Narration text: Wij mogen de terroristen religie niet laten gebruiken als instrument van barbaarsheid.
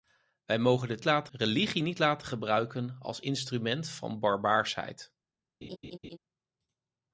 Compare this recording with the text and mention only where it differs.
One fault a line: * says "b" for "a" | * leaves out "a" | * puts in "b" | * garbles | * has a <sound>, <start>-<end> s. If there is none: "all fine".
* says "laten" for "terroristen"
* has a laugh, 5.6-6.2 s